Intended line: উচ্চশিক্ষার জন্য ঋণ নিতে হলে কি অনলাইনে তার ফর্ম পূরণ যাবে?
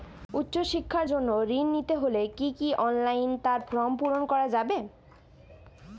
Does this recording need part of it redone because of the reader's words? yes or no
yes